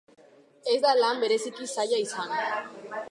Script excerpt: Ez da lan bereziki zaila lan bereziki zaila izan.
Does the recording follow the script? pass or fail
fail